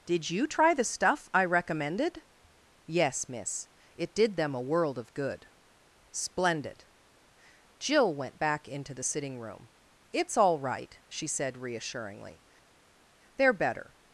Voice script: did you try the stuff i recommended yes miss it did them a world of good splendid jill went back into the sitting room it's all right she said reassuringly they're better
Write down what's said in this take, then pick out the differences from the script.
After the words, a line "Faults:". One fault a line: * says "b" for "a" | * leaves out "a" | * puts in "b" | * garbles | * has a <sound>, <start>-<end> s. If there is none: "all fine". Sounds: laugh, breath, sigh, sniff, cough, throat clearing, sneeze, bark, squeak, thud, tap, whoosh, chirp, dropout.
did you try the stuff i recommended yes miss it did them a world of good splendid jill went back into the sitting room it's all right she said reassuringly they're better
Faults:
all fine